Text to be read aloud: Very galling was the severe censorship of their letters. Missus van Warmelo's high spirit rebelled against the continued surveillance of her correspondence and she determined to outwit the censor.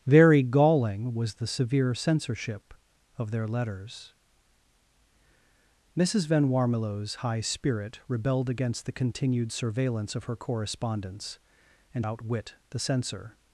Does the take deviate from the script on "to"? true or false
true